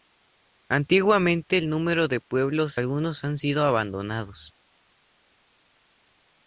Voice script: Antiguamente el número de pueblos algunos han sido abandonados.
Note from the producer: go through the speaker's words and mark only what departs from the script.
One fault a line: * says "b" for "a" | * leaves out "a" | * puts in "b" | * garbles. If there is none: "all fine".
all fine